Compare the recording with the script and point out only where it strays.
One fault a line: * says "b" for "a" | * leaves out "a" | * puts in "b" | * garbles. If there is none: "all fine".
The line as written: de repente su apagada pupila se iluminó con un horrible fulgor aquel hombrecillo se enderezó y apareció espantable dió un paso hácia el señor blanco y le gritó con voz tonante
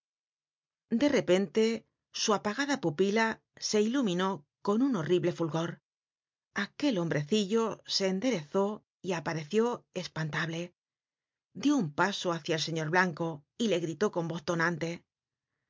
all fine